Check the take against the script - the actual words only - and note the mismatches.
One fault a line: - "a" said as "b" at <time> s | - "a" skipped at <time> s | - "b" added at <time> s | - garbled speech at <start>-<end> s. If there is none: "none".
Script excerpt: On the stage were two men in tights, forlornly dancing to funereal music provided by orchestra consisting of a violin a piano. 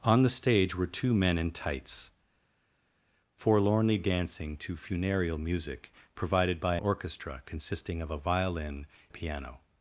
none